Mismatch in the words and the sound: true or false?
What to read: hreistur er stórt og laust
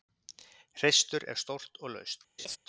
true